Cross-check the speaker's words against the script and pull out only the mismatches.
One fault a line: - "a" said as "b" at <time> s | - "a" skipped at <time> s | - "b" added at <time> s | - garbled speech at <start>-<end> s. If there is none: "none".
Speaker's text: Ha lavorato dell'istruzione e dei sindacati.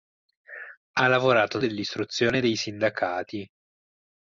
none